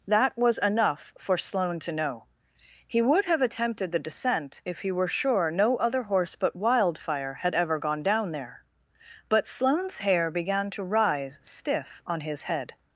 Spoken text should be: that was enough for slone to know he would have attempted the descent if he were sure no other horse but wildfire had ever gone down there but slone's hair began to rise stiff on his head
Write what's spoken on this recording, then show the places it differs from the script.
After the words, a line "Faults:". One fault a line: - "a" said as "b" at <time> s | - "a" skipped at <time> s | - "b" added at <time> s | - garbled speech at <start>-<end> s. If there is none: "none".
that was enough for slone to know he would have attempted the descent if he were sure no other horse but wildfire had ever gone down there but slone's hair began to rise stiff on his head
Faults:
none